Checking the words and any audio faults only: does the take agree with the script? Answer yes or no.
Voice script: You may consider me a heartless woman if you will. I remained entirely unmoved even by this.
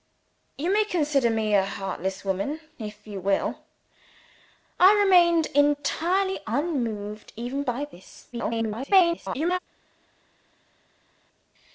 no